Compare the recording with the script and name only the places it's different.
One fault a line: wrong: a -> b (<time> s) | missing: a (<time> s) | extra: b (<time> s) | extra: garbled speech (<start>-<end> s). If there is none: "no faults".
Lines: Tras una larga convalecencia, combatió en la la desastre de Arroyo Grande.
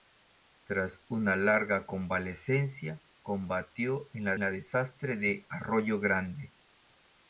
no faults